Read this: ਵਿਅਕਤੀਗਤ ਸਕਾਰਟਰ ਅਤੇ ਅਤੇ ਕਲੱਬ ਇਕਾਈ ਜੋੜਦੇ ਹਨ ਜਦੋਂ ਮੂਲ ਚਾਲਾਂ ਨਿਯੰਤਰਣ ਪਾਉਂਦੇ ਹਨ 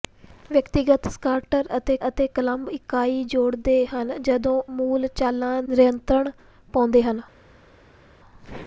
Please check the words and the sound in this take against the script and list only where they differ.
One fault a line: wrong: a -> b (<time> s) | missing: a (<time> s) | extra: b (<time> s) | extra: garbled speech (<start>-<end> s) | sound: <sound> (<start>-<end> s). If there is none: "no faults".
no faults